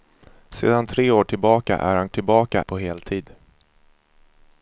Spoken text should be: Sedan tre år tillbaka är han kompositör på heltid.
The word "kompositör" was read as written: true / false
false